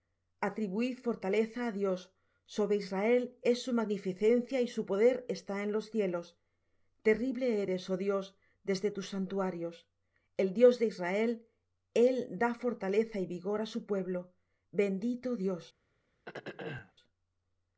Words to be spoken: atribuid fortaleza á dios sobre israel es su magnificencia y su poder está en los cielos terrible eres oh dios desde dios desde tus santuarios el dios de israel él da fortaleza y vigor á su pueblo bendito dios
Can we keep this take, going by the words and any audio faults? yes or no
no